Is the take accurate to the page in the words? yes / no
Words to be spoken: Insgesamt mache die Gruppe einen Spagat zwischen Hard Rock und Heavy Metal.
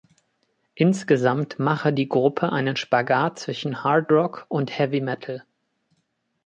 yes